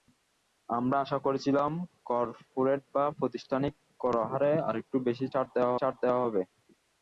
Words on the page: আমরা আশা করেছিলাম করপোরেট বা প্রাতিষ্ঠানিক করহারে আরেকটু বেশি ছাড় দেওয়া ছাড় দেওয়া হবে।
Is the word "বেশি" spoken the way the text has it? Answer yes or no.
yes